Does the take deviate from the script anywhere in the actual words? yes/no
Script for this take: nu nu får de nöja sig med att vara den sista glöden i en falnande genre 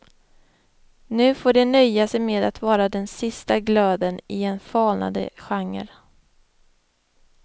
yes